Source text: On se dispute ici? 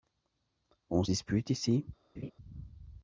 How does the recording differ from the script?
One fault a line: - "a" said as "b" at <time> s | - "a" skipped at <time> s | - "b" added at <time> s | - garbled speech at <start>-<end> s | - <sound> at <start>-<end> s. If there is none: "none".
- laugh at 2.2-2.3 s